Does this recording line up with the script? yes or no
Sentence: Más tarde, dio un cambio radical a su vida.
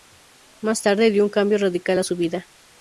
yes